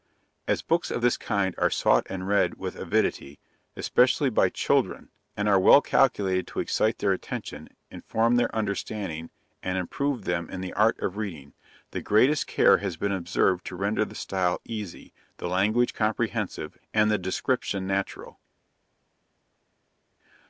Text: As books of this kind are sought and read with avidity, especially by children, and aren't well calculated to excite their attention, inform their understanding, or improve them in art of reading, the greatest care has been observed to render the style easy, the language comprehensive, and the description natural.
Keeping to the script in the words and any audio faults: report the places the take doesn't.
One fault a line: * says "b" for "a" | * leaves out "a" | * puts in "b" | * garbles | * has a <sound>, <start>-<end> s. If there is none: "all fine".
* says "are" for "aren't"
* says "and" for "or"
* puts in "the"